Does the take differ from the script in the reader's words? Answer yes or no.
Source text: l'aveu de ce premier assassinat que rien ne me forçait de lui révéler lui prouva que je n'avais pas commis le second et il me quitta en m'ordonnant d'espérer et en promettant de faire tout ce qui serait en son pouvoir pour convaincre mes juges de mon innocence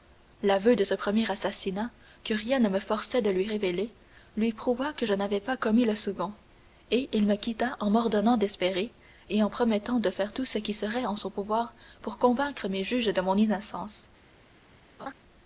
no